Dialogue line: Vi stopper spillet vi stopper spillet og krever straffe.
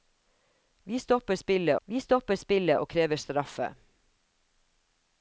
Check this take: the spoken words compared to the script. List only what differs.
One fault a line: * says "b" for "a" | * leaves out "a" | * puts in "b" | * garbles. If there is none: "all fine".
all fine